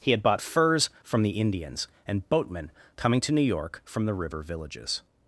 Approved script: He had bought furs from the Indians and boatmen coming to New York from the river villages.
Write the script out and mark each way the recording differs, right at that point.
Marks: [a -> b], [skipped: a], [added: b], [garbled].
He had bought furs from the Indians and boatmen coming to New York from the river villages.